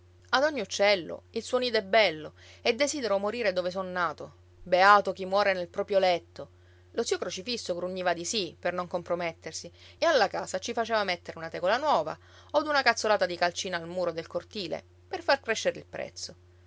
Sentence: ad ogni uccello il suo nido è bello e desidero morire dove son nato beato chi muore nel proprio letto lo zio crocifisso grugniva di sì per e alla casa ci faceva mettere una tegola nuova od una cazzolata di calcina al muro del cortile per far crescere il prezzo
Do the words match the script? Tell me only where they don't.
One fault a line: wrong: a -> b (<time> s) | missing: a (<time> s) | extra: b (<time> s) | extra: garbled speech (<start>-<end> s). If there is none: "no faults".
extra: non compromettersi (8.7 s)